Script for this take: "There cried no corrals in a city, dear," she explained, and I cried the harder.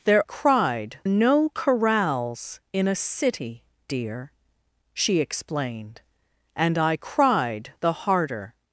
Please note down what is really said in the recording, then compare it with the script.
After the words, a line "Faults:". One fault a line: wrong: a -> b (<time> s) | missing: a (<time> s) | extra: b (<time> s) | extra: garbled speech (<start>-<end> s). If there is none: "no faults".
"There cried no corrals in a city, dear," she explained, and I cried the harder.
Faults:
no faults